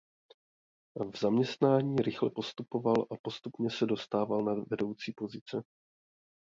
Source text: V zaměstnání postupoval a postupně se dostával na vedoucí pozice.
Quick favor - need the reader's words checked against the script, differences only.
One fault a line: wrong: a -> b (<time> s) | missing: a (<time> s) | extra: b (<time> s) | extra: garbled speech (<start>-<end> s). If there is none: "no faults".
extra: rychle (1.9 s)